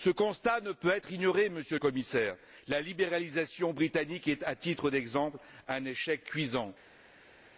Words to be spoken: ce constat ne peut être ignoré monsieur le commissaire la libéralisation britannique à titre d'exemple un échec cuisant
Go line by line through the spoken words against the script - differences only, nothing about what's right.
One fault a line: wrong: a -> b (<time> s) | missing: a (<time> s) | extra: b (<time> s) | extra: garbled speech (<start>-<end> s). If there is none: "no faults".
extra: est (4.3 s)